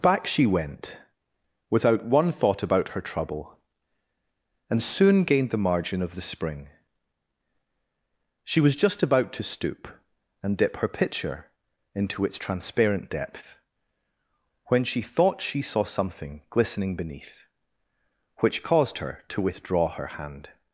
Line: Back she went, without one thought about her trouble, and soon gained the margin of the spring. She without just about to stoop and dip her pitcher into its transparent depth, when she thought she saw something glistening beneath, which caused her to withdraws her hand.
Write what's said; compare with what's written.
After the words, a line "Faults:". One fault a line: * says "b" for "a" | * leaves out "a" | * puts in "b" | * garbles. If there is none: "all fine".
Back she went, without one thought about her trouble, and soon gained the margin of the spring. She was just about to stoop and dip her pitcher into its transparent depth, when she thought she saw something glistening beneath, which caused her to withdraw her hand.
Faults:
* says "was" for "without"
* says "withdraw" for "withdraws"